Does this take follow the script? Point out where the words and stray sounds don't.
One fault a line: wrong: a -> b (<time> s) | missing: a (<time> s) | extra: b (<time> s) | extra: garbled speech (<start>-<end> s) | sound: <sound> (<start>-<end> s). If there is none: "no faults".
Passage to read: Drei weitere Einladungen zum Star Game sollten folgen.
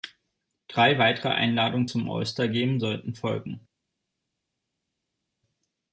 extra: All (2.1 s)